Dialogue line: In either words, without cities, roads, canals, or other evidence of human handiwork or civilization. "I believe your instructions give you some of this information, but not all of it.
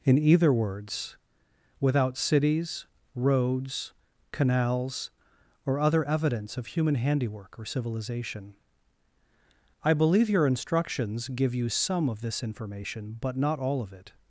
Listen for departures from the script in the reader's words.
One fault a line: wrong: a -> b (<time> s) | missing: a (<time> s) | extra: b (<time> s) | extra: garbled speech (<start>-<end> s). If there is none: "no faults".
no faults